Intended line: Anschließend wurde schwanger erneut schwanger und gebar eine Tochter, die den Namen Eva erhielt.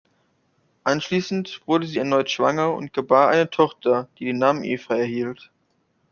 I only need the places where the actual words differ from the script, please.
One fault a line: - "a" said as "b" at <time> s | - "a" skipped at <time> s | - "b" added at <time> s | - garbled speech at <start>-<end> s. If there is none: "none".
- "schwanger" said as "sie" at 1.9 s